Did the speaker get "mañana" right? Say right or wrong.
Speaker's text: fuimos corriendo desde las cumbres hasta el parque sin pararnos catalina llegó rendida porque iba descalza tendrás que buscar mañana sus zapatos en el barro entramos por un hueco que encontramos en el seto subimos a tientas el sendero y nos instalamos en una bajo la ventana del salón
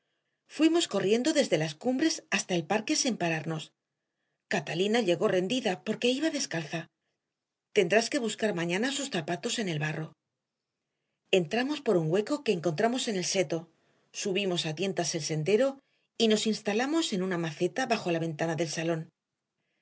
right